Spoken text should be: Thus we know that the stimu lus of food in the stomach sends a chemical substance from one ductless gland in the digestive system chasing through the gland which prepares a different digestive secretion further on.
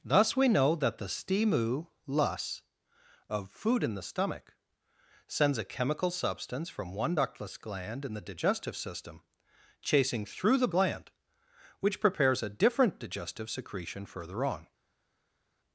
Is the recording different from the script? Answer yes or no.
no